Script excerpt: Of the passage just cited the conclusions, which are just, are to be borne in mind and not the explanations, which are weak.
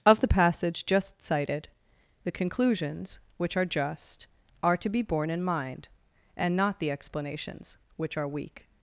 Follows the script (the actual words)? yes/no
yes